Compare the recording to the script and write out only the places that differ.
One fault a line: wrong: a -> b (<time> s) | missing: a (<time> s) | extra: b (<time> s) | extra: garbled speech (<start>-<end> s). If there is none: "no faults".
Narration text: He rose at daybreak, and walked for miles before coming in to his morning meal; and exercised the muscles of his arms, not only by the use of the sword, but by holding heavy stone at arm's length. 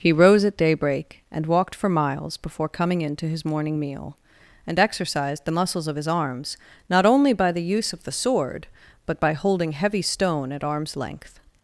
no faults